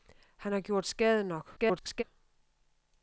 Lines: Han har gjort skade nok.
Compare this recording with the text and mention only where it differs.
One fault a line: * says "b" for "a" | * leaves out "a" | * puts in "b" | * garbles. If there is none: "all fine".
* garbles